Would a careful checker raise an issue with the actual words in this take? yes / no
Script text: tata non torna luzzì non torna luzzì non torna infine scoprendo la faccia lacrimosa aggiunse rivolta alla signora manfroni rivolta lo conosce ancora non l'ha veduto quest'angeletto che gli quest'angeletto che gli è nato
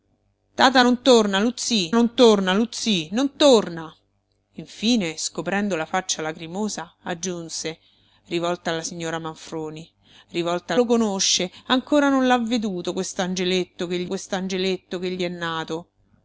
no